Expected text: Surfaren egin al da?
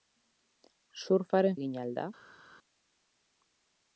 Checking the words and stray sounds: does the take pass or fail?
pass